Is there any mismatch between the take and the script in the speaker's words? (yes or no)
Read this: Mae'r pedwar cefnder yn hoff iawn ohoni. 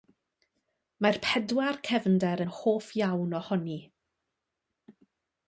no